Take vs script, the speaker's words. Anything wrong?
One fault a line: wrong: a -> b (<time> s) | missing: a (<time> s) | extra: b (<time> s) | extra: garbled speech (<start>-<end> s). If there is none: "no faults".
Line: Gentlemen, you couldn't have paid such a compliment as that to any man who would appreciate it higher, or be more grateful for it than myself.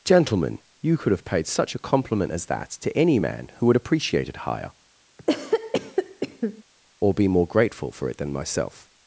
wrong: couldn't -> could (1.0 s)